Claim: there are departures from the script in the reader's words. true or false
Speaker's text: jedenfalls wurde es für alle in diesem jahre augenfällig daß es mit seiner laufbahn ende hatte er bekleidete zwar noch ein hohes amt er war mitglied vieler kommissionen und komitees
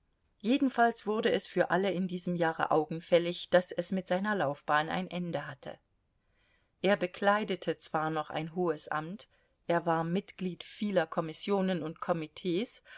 true